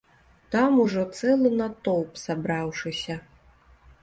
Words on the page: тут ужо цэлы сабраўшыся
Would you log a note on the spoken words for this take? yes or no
yes